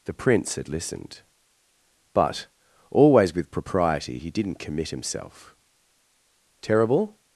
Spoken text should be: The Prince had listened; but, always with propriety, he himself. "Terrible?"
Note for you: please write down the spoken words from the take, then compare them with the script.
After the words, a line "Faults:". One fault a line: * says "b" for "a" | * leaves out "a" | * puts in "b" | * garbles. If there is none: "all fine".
The Prince had listened; but, always with propriety, he didn't commit himself. "Terrible?"
Faults:
* puts in "didn't commit"